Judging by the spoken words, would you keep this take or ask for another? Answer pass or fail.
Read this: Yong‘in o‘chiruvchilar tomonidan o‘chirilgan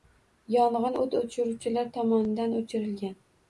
fail